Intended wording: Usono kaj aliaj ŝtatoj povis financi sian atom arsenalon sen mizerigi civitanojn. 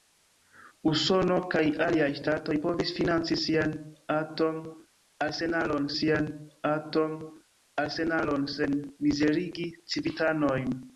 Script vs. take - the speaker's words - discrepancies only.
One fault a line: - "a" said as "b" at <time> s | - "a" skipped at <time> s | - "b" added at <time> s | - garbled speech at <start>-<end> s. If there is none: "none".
- "sian atom arsenalon" added at 6.0 s